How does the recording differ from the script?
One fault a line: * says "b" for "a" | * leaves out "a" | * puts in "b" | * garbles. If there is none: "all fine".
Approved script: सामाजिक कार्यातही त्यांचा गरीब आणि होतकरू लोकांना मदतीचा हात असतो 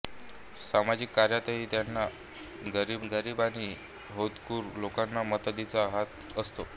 * puts in "गरीब"